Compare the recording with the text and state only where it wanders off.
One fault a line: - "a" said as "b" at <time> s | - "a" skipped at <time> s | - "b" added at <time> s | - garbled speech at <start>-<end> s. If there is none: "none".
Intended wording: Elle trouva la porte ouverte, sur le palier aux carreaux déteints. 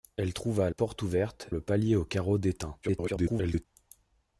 - "la" skipped at 0.7 s
- "sur" skipped at 1.5 s
- garbled speech at 2.8-3.6 s